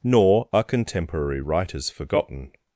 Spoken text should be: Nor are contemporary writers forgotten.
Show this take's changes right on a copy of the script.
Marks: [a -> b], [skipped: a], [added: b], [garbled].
Nor are contemporary writers forgotten.